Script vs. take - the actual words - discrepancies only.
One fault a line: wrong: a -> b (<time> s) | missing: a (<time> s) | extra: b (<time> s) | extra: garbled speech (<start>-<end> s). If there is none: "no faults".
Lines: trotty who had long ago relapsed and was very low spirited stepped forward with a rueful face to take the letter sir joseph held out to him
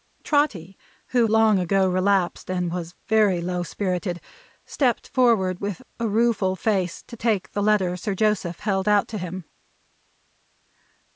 missing: had (1.3 s)